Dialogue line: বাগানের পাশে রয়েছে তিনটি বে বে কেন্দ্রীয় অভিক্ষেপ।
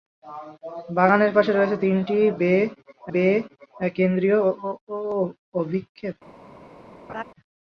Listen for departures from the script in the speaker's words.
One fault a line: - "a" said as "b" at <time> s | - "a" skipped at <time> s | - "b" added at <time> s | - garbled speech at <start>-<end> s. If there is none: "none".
none